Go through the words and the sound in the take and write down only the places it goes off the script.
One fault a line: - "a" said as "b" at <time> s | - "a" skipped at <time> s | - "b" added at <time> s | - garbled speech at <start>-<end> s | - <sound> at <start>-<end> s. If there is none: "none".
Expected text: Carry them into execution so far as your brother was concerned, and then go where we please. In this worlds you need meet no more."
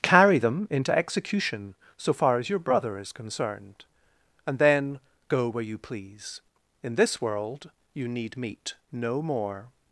- "was" said as "is" at 3.0 s
- "we" said as "you" at 5.6 s
- "worlds" said as "world" at 7.2 s